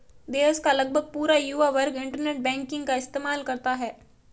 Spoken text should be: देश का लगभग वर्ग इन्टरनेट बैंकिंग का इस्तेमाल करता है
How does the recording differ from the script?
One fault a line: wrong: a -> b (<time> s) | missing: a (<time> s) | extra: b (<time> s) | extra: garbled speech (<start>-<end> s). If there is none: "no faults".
extra: पूरा युवा (1.1 s)